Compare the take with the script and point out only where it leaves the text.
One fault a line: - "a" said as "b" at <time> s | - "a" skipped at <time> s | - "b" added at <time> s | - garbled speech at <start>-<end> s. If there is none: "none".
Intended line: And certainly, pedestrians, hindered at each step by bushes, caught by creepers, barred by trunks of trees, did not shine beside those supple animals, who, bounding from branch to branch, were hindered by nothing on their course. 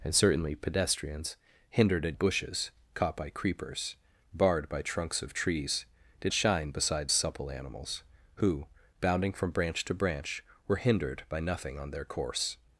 - "each step by" skipped at 2.2 s
- "not" skipped at 6.3 s
- "those" skipped at 7.1 s